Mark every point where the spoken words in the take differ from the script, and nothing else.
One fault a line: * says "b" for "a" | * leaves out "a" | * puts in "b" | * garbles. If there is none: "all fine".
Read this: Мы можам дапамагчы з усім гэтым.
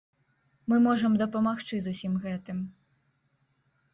all fine